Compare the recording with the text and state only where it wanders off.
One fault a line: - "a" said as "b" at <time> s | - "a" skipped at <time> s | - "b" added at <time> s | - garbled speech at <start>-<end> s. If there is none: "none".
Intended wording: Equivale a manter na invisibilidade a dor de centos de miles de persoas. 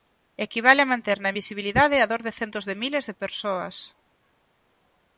none